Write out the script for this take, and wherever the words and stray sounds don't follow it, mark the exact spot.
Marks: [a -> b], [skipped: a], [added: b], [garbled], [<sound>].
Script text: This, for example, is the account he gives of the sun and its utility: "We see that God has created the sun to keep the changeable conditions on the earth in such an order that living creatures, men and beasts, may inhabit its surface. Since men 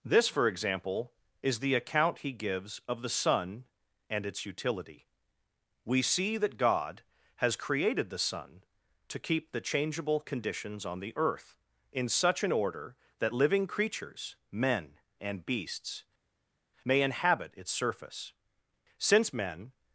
This, for example, is the account he gives of the sun and its utility: "We see that God has created the sun to keep the changeable conditions on the earth in such an order that living creatures, men and beasts, may inhabit its surface. Since men